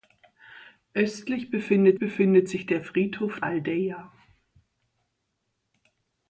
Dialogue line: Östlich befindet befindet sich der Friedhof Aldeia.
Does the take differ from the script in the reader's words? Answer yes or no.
no